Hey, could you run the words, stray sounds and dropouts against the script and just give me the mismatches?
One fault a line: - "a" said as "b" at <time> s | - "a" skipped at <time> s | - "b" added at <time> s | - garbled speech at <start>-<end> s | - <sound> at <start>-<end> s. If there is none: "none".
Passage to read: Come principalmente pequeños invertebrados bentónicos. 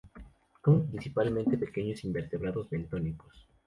none